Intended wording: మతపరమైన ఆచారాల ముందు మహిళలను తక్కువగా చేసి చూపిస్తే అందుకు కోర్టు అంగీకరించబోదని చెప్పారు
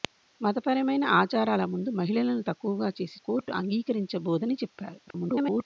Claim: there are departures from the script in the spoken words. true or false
true